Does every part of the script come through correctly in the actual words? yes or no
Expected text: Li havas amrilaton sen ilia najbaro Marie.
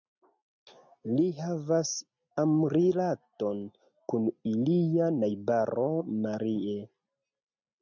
no